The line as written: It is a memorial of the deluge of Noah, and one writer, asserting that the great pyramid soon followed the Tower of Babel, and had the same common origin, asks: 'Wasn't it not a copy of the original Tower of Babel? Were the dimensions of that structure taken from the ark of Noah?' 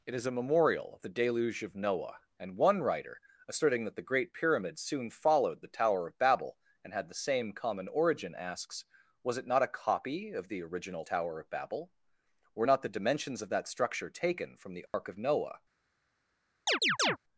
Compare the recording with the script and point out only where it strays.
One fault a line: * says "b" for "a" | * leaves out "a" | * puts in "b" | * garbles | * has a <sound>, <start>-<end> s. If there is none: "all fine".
* says "Was" for "Wasn't"
* puts in "not"
* has a dropout, 14.9-14.9 s
* has a chirp, 16.7-17.2 s